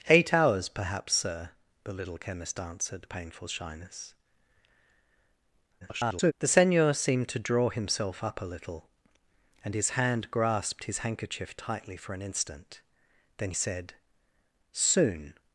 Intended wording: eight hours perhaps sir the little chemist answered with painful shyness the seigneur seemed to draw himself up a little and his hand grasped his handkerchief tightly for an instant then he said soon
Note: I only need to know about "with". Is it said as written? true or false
false